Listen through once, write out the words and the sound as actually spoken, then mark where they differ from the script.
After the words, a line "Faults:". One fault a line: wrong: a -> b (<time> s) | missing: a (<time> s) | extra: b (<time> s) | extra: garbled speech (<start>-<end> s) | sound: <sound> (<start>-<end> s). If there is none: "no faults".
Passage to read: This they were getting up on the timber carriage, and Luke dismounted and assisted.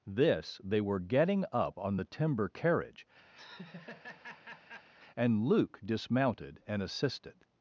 This they were getting up on the timber carriage, and Luke dismounted and assisted.
Faults:
sound: laugh (3.3-4.9 s)